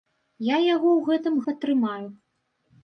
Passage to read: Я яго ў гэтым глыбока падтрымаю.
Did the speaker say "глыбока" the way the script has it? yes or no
no